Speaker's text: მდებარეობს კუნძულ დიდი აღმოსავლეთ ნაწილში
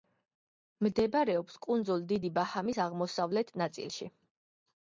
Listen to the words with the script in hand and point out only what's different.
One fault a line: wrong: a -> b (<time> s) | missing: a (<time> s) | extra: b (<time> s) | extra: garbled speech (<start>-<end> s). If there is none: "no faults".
extra: ბაჰამის (2.4 s)